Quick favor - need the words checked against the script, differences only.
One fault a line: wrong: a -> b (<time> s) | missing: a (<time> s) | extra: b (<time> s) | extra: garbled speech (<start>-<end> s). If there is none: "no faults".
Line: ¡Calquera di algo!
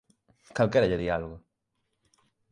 extra: lle (0.9 s)